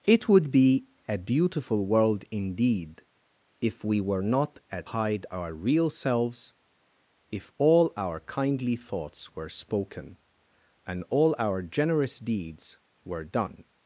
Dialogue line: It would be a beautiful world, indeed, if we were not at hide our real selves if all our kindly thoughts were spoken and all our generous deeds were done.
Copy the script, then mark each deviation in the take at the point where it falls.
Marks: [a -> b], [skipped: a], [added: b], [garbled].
It would be a beautiful world, indeed, if we were not at hide our real selves if all our kindly thoughts were spoken and all our generous deeds were done.